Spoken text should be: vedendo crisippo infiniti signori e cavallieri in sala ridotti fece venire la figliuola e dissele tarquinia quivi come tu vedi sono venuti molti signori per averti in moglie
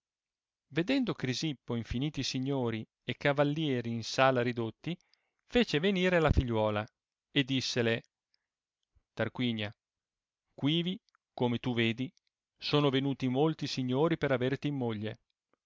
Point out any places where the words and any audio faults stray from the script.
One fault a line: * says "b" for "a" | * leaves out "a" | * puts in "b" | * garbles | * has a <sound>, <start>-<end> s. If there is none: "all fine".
all fine